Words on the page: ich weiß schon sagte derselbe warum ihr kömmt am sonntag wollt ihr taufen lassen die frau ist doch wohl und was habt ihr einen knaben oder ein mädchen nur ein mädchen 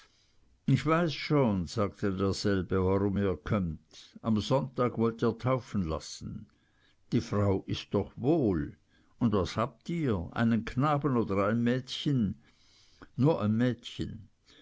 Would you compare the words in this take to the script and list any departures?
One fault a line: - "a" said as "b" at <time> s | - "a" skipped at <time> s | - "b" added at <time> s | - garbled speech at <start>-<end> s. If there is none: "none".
none